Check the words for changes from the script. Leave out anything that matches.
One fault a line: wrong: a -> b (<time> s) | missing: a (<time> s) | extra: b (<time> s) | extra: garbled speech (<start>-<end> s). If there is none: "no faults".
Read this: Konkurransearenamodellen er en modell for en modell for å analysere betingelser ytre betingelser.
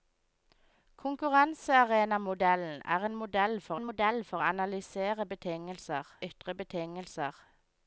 no faults